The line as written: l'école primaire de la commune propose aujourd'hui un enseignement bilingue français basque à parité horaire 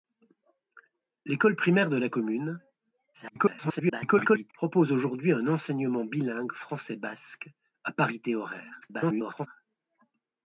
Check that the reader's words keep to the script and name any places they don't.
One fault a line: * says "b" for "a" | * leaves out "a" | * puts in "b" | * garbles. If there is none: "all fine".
* garbles
* garbles